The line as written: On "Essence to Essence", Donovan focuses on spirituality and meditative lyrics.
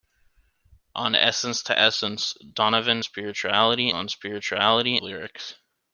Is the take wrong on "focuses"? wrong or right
wrong